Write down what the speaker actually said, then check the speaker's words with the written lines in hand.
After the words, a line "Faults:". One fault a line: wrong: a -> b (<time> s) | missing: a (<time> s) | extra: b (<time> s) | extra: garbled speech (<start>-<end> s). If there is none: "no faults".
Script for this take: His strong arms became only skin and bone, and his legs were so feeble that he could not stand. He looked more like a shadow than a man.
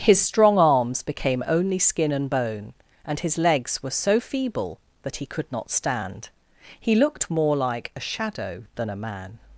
His strong arms became only skin and bone, and his legs were so feeble that he could not stand. He looked more like a shadow than a man.
Faults:
no faults